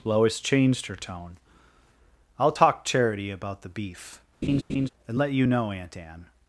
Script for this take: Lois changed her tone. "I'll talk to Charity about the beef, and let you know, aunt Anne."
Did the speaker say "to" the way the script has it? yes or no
no